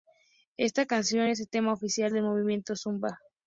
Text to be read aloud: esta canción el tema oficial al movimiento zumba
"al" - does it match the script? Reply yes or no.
no